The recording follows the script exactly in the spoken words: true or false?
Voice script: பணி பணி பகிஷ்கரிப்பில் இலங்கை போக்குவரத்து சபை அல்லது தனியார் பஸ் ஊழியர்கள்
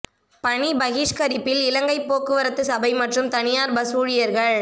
false